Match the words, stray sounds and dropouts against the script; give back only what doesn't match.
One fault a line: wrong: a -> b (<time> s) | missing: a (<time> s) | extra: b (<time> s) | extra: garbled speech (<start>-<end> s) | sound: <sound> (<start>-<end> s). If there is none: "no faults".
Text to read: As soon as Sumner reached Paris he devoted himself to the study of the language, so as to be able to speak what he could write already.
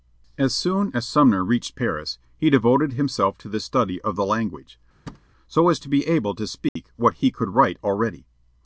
sound: thud (5.1-5.3 s)
sound: dropout (6.7-6.8 s)